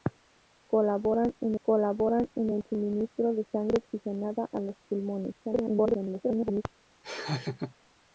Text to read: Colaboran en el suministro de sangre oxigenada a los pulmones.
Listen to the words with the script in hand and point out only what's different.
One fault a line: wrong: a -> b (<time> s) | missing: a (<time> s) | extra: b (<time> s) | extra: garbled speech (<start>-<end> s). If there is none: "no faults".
extra: colaboran en (1.6 s)
extra: garbled speech (5.4-6.6 s)